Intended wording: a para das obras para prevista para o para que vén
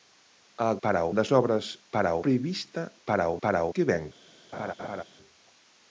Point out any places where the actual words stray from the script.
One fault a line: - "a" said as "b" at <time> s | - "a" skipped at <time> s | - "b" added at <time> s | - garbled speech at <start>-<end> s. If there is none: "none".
none